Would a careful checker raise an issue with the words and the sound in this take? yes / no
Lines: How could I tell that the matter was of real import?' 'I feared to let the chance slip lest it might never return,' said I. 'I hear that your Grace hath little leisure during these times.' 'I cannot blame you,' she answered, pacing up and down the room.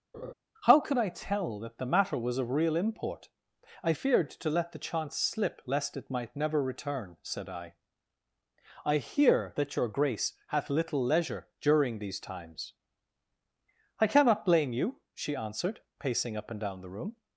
yes